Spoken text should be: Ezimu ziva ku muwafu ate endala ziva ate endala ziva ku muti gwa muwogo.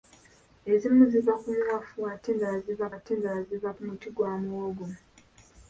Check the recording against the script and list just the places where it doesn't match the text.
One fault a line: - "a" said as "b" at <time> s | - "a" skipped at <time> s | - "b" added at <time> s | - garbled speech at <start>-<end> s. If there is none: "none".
none